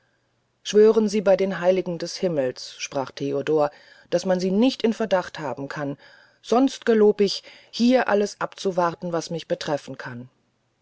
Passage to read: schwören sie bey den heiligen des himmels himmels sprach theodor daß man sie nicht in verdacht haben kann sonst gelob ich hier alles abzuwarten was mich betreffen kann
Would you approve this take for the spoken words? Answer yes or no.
no